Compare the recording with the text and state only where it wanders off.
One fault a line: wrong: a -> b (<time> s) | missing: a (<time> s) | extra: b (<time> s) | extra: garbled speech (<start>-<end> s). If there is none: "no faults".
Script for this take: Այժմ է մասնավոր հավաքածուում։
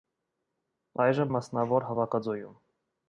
no faults